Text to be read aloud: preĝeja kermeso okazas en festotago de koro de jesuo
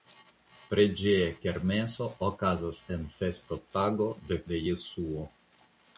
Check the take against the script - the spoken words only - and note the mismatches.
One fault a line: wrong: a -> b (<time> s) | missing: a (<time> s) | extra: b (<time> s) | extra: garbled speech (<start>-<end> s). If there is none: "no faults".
missing: koro (4.4 s)